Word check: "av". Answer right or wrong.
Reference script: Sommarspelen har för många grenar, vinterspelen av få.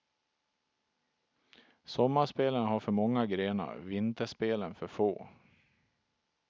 wrong